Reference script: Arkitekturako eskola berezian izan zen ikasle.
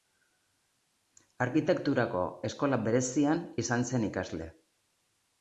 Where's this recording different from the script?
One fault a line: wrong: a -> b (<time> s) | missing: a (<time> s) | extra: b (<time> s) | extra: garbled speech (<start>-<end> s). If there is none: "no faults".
no faults